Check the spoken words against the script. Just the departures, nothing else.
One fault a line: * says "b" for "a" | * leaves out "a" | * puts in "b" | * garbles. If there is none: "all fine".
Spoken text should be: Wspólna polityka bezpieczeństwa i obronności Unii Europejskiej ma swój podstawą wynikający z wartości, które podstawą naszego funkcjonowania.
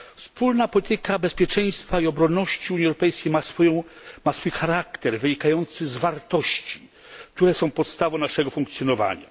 * says "charakter" for "podstawą"
* puts in "są"